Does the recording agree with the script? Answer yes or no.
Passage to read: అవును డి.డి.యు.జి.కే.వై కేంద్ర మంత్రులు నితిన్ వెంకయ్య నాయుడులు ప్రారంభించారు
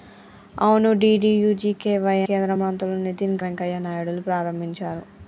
yes